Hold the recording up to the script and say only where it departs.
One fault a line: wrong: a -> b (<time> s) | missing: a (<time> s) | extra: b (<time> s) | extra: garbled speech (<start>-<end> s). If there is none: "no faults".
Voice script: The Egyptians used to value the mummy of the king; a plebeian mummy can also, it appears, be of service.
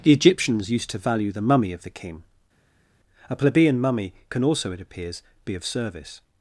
no faults